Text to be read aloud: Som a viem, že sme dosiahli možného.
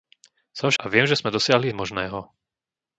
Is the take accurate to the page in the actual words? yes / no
yes